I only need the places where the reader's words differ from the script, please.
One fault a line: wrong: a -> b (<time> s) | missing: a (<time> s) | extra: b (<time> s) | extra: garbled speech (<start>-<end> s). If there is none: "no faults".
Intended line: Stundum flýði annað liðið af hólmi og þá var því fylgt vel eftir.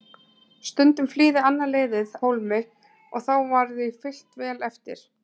missing: af (2.1 s)